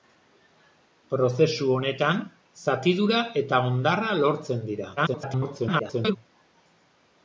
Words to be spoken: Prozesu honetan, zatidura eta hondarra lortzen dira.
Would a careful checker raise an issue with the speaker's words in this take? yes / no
yes